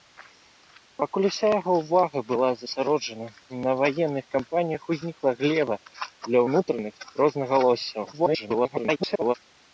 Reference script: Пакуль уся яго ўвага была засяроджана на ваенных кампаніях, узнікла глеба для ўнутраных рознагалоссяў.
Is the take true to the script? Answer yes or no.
no